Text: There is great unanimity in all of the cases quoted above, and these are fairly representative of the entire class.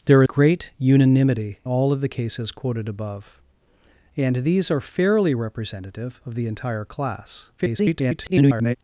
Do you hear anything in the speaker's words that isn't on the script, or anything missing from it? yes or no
yes